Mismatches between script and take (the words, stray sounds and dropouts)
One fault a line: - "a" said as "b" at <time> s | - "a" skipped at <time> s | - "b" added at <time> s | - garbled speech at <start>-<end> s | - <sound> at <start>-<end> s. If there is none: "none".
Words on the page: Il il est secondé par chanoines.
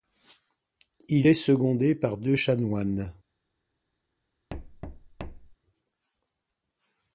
- "il" skipped at 1.3 s
- "deux" added at 2.2 s
- thud at 4.5-5.6 s